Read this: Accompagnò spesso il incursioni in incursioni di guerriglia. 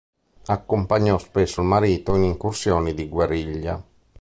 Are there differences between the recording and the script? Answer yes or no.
yes